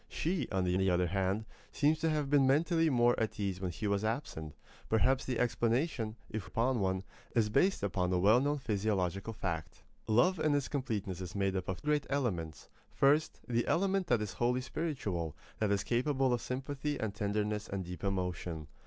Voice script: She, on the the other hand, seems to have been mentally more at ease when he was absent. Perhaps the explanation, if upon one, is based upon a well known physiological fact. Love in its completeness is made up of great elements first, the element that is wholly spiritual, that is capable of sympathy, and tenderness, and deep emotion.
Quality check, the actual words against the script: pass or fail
pass